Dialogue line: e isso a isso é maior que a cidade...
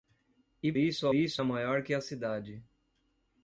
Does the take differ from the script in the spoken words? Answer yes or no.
no